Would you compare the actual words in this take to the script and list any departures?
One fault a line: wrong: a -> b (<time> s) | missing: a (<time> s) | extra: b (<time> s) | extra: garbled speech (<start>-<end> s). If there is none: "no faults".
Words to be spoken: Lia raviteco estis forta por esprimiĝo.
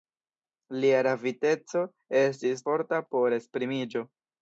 no faults